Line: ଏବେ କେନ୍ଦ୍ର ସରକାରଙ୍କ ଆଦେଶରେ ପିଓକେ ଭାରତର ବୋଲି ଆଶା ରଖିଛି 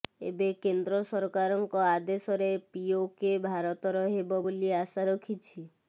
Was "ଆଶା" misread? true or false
false